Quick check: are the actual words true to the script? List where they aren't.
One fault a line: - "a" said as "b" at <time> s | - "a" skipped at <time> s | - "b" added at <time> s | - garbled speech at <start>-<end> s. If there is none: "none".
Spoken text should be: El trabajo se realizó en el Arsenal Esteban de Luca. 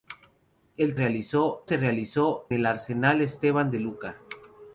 - "trabajo" said as "realizó" at 1.0 s
- "en" skipped at 2.5 s